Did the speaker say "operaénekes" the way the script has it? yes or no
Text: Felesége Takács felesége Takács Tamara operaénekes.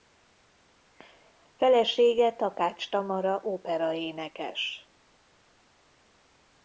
yes